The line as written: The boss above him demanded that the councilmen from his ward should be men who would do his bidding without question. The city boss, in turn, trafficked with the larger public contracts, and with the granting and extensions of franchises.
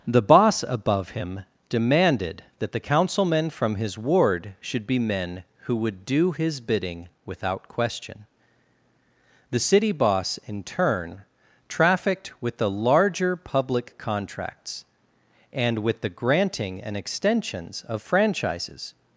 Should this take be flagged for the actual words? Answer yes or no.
no